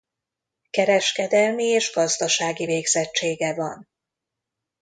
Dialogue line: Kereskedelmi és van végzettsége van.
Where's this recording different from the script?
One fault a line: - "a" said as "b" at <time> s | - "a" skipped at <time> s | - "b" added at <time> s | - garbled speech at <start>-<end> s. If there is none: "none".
- "van" said as "gazdasági" at 1.9 s